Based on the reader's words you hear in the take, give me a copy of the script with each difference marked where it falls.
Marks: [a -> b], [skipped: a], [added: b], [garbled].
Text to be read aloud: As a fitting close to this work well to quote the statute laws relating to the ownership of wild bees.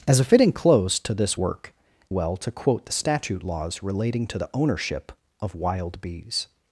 As a fitting close to this work well to quote the statute laws relating to the ownership of wild bees.